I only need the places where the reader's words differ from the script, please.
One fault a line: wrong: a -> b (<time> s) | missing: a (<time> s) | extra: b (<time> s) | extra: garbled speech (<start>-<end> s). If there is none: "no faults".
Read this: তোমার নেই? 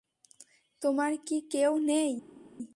extra: কি কেউ (1.2 s)